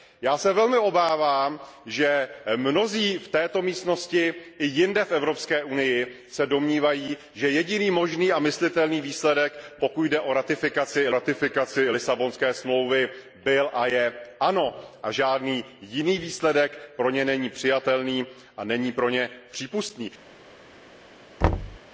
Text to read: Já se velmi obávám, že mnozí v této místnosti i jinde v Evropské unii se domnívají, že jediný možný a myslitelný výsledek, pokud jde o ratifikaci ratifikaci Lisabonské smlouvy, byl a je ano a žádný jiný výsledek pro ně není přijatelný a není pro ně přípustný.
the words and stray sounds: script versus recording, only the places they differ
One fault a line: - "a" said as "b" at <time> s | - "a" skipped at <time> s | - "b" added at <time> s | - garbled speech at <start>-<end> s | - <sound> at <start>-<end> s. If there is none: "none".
- thud at 21.4-21.8 s